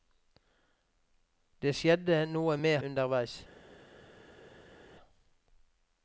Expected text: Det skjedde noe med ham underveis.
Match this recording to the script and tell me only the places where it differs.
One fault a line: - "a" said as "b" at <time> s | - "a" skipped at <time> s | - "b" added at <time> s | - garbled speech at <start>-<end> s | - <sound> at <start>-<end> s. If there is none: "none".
- "ham" skipped at 2.8 s